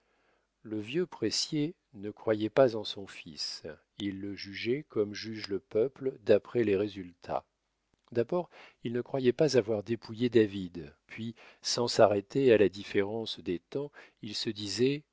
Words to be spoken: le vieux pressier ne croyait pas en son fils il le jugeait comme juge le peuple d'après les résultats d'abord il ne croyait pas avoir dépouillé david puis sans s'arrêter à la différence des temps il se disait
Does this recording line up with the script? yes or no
yes